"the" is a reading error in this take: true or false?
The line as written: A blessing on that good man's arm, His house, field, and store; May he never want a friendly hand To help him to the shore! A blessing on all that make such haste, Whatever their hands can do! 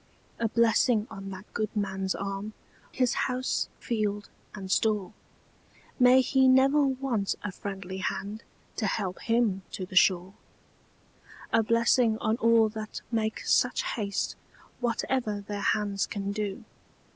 false